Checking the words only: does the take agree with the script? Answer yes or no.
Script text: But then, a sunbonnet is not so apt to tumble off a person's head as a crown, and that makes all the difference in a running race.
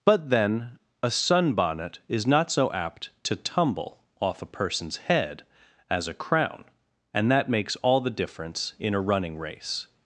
yes